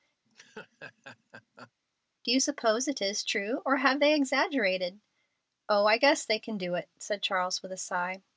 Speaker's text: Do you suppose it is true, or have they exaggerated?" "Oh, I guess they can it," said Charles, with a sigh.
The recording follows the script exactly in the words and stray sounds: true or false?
false